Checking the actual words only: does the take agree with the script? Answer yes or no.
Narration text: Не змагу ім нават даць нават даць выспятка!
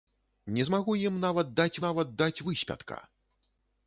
yes